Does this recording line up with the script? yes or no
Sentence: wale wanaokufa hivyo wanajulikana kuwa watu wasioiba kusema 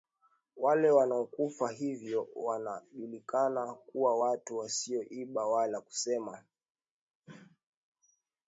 no